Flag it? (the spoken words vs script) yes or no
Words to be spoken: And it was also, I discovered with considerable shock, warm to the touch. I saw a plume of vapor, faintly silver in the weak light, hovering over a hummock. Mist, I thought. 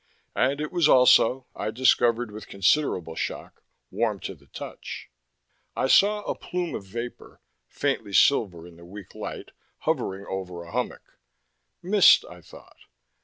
no